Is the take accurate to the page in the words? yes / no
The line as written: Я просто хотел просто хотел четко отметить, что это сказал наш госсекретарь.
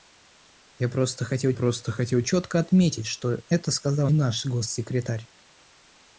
yes